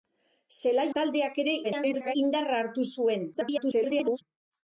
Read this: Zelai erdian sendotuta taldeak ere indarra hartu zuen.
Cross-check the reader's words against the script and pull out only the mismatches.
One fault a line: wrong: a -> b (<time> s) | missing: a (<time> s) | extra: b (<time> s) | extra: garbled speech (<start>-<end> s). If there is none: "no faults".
missing: erdian sendotuta (0.8 s)
extra: garbled speech (1.6-2.2 s)
extra: garbled speech (3.3-4.2 s)